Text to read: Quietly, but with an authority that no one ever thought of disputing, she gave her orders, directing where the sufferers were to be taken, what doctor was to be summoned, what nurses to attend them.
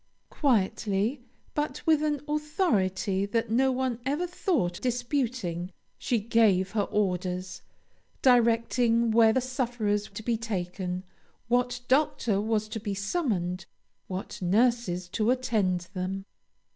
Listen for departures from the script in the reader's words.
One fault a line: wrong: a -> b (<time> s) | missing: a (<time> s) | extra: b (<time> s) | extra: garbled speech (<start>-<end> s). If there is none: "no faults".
missing: of (4.8 s)
missing: were (10.1 s)